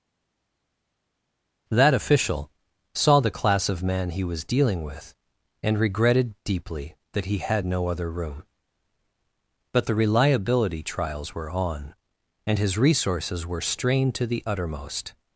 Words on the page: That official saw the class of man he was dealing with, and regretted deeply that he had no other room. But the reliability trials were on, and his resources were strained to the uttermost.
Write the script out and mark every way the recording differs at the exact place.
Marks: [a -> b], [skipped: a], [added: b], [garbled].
That official saw the class of man he was dealing with, and regretted deeply that he had no other room. But the reliability trials were on, and his resources were strained to the uttermost.